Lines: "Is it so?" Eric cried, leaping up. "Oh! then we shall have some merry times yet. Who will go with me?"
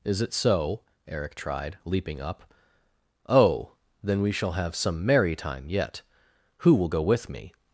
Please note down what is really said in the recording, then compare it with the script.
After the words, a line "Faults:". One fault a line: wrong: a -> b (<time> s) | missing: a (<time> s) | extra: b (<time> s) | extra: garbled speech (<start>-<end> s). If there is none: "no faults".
"Is it so?" Eric tried, leaping up. "Oh! then we shall have some merry time yet. Who will go with me?"
Faults:
wrong: cried -> tried (1.4 s)
wrong: times -> time (5.3 s)